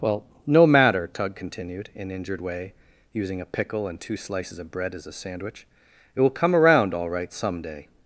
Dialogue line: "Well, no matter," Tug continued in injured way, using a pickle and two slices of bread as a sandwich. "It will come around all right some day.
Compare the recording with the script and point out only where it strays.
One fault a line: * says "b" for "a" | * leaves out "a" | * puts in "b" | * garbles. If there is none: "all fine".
all fine